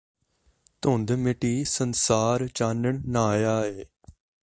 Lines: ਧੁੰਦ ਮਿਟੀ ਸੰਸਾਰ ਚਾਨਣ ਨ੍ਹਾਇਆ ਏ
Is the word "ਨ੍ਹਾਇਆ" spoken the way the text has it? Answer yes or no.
yes